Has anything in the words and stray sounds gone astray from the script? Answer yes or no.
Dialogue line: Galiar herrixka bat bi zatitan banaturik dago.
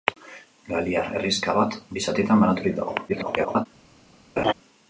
yes